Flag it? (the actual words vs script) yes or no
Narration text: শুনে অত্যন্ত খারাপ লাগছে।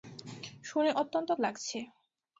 yes